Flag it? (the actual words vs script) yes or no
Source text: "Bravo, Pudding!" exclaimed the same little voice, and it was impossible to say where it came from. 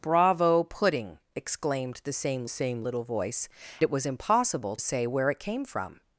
yes